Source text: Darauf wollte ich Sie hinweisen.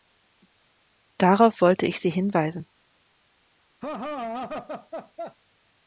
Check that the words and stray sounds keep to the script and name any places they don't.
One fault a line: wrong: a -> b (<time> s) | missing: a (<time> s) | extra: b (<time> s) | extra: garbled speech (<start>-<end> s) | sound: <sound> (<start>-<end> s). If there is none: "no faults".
sound: laugh (3.8-5.4 s)